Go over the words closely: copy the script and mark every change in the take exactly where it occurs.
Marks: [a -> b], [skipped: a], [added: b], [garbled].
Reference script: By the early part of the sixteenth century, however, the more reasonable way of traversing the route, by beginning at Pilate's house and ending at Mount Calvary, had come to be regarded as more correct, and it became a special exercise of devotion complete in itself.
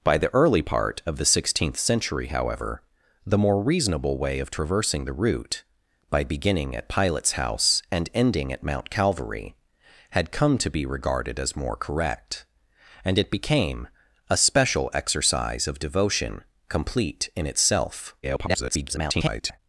By the early part of the sixteenth century, however, the more reasonable way of traversing the route, by beginning at Pilate's house and ending at Mount Calvary, had come to be regarded as more correct, and it became a special exercise of devotion complete in itself. [garbled]